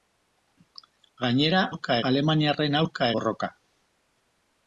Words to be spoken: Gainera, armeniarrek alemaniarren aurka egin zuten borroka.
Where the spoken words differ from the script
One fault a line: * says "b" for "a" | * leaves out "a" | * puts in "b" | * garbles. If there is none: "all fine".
* says "aurka" for "armeniarrek"
* leaves out "egin zuten"